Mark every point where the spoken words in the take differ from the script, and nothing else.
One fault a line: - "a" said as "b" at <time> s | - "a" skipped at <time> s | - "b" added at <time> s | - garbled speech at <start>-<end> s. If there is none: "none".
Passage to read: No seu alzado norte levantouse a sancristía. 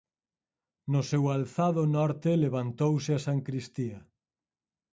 none